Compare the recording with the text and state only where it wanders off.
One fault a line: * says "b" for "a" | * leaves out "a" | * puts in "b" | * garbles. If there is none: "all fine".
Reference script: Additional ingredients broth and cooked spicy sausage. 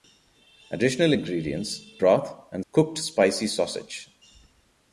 all fine